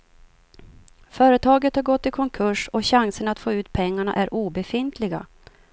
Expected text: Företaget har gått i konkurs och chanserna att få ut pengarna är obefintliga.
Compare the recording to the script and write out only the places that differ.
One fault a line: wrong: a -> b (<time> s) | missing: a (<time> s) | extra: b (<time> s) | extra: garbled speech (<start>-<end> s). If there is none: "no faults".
no faults